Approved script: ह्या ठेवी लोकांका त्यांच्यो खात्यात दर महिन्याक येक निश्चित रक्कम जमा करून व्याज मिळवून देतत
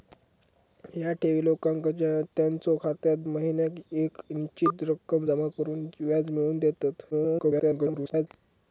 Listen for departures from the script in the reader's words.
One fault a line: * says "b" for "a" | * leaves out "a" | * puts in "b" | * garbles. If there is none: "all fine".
* leaves out "दर"
* garbles